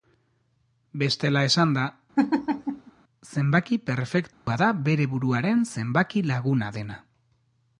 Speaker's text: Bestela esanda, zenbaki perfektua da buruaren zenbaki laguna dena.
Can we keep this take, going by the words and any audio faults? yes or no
no